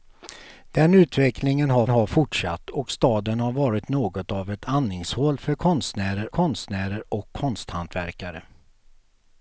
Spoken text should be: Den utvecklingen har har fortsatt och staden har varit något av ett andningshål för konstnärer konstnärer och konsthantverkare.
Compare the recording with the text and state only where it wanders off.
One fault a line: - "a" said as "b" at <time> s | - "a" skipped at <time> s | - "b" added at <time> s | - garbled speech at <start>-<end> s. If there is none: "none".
none